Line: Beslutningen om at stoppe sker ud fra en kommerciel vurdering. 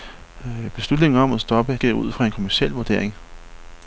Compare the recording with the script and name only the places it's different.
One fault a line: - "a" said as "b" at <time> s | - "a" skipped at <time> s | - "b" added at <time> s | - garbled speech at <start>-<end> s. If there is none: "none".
none